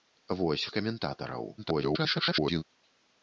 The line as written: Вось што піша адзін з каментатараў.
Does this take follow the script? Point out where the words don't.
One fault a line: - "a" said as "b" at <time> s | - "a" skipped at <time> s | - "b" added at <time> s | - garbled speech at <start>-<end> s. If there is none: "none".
- "што піша адзін" skipped at 0.6 s
- garbled speech at 1.6-2.6 s